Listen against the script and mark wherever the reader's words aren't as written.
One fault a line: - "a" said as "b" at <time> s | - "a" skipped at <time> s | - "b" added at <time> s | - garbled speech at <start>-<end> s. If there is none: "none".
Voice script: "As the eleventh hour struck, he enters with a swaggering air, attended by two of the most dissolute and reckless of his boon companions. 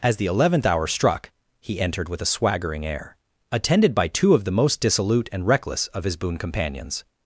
- "enters" said as "entered" at 1.8 s